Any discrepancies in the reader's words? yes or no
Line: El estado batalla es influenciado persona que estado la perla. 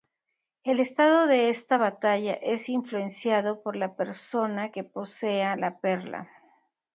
yes